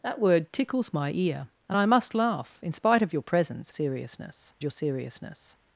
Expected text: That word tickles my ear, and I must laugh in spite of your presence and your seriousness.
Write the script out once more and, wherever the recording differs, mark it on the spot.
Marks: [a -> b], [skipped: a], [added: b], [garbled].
That word tickles my ear, and I must laugh in spite of your presence [and -> seriousness] your seriousness.